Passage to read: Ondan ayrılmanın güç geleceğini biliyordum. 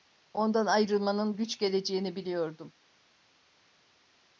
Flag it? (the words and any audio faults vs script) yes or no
no